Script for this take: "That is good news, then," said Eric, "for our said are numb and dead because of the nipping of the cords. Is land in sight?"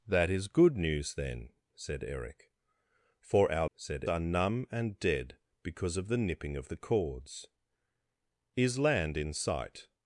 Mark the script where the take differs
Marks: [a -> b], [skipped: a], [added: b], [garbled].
"That is good news, then," said Eric, "for our said are numb and dead because of the nipping of the cords. Is land in sight?"